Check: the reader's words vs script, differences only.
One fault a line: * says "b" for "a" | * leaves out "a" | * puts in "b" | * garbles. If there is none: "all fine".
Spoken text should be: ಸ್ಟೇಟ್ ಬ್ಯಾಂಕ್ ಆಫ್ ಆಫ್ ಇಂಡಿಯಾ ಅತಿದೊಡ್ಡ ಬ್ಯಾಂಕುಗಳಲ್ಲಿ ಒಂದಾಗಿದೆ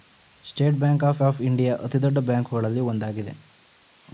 all fine